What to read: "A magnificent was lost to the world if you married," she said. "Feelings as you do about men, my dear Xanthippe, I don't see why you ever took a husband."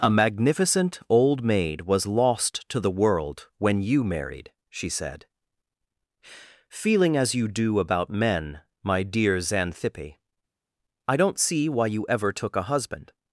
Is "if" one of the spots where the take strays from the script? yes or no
yes